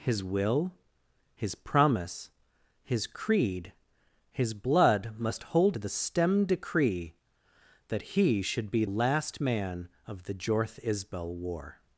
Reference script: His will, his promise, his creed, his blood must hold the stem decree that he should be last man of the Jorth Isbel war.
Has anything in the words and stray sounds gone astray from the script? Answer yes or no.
no